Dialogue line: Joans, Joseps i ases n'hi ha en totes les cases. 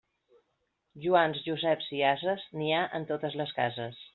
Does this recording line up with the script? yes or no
yes